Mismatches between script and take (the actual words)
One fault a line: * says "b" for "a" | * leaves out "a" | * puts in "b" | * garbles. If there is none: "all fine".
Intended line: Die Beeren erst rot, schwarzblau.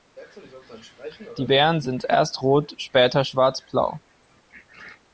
* puts in "sind"
* puts in "später"